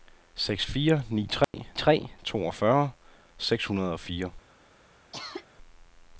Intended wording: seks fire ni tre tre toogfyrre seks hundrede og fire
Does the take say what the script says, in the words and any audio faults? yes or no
no